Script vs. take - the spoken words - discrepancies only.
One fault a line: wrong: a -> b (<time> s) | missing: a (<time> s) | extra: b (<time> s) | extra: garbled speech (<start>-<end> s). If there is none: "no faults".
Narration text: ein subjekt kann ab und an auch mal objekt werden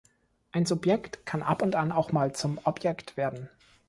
extra: zum (2.3 s)